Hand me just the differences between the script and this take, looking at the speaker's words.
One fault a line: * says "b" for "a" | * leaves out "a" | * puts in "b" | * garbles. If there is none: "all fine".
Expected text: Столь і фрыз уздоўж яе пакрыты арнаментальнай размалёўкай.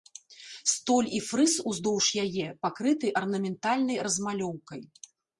all fine